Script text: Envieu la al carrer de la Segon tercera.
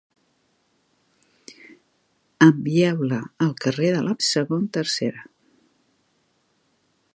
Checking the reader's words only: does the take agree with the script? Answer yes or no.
yes